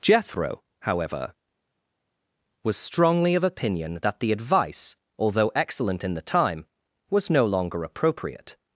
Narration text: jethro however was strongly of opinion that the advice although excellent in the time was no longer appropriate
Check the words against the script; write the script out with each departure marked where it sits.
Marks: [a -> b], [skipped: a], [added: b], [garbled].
jethro however was strongly of opinion that the advice although excellent in the time was no longer appropriate